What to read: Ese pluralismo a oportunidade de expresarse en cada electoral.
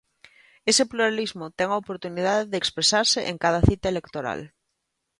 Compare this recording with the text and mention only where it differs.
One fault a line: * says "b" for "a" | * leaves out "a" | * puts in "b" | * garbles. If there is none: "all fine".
* puts in "ten"
* puts in "cita"